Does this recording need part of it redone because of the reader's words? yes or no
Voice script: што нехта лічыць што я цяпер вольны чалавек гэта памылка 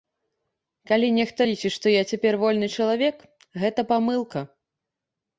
yes